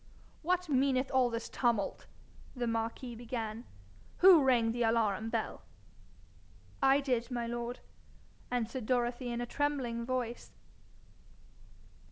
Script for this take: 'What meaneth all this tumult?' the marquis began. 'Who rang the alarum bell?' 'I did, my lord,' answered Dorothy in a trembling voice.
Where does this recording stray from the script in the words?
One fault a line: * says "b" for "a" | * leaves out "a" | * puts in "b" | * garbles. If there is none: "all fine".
all fine